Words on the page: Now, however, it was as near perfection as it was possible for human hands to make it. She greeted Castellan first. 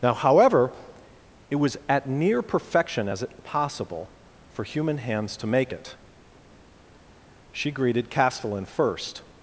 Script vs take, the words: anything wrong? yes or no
yes